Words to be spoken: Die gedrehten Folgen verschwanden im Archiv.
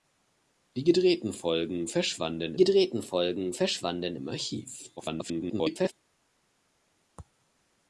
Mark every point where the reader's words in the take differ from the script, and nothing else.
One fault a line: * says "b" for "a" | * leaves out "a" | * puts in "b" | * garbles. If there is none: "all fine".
* puts in "gedrehten Folgen verschwanden"
* garbles